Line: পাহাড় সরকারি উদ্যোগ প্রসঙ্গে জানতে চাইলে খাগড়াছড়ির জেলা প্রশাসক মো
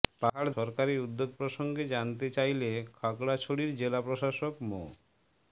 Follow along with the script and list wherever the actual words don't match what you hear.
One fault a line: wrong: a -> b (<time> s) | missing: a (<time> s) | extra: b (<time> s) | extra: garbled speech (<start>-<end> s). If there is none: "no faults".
no faults